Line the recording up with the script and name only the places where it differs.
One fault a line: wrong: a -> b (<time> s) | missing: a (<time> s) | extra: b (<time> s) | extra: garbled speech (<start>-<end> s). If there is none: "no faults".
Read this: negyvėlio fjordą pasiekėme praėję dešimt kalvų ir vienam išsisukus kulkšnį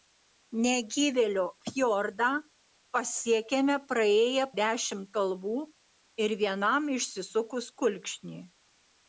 no faults